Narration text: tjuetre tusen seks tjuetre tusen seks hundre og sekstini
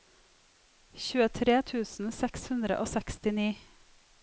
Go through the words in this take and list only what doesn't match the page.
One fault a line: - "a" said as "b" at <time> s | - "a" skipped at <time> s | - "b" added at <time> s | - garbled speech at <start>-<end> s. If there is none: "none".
- "tjuetre tusen seks" skipped at 2.5 s